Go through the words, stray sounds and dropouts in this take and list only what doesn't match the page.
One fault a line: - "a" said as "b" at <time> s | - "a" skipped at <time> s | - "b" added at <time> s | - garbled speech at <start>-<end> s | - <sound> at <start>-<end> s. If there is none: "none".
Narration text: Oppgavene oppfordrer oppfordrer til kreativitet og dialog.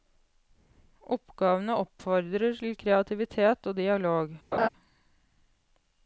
- "oppfordrer" skipped at 2.6 s
- laugh at 4.5-4.7 s